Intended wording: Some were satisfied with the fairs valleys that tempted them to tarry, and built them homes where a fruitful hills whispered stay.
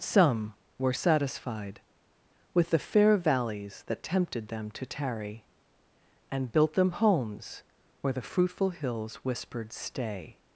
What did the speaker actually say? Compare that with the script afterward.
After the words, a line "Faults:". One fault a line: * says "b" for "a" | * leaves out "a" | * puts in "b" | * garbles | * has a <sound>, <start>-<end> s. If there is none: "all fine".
Some were satisfied with the fair valleys that tempted them to tarry, and built them homes where the fruitful hills whispered stay.
Faults:
* says "fair" for "fairs"
* says "the" for "a"